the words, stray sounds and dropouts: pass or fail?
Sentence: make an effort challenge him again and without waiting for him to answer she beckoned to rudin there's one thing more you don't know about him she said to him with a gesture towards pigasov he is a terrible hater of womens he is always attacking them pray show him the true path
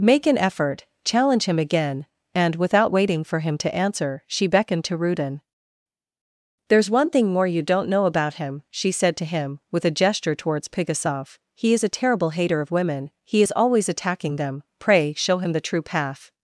fail